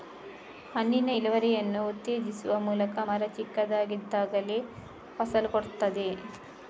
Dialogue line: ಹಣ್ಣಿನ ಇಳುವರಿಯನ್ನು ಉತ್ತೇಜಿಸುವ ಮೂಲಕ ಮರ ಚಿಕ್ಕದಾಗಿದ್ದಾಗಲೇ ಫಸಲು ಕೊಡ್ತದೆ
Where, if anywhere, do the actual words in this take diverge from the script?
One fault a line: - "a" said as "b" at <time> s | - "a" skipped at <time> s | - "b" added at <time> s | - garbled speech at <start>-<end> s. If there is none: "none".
none